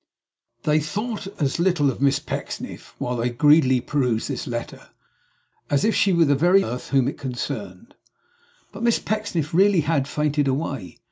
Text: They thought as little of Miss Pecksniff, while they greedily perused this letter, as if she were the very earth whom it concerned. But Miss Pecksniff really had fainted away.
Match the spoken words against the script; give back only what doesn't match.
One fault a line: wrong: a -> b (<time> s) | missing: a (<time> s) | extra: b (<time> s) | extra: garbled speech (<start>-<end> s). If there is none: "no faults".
no faults